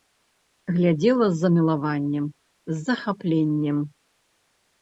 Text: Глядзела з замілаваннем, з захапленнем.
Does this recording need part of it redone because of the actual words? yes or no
no